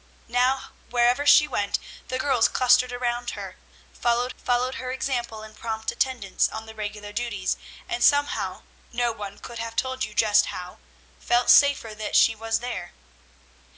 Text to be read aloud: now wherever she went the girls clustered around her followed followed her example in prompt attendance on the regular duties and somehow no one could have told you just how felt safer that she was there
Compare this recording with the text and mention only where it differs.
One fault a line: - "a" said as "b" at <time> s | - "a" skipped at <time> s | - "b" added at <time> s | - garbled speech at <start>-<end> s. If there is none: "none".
none